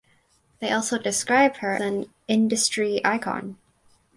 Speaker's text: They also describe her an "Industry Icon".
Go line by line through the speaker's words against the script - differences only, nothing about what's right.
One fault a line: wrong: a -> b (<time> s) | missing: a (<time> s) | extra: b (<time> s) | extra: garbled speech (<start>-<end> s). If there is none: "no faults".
no faults